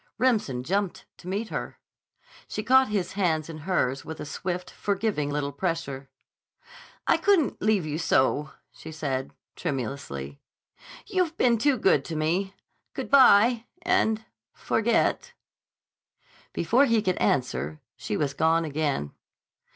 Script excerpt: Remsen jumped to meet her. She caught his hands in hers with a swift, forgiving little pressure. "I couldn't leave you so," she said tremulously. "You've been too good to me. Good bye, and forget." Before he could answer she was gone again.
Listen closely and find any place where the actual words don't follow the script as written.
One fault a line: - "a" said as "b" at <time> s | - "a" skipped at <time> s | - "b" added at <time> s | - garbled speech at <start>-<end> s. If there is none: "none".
none